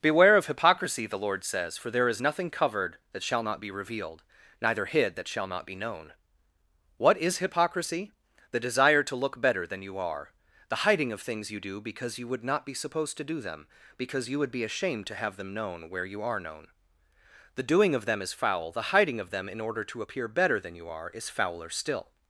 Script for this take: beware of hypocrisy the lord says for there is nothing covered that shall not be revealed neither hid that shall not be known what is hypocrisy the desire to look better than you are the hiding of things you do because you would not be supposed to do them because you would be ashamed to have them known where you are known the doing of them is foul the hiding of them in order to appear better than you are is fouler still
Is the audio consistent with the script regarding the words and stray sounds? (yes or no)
yes